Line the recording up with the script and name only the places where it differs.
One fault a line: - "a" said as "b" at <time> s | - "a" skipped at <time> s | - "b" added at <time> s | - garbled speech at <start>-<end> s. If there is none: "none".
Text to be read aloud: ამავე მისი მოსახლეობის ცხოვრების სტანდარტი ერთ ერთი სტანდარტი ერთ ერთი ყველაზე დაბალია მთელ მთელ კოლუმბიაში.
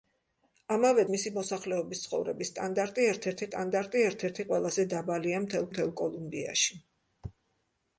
none